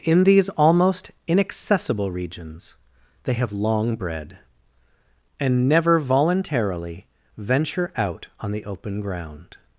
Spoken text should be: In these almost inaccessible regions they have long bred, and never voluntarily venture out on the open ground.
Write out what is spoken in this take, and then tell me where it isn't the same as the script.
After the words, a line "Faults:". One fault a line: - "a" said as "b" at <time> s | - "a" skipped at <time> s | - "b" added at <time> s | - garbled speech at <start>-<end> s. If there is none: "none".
In these almost inaccessible regions they have long bred, and never voluntarily venture out on the open ground.
Faults:
none